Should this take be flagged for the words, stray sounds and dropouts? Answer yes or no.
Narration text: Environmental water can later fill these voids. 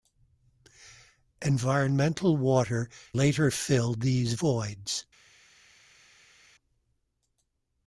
yes